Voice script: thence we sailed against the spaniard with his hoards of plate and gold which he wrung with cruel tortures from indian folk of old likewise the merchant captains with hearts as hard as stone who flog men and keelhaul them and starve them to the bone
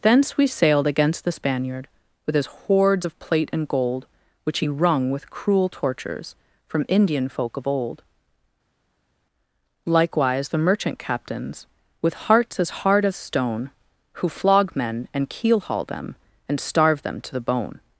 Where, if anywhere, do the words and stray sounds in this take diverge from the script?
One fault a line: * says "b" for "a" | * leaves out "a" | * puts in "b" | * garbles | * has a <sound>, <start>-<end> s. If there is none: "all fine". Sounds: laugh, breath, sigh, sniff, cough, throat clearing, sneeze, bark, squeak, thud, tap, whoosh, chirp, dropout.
all fine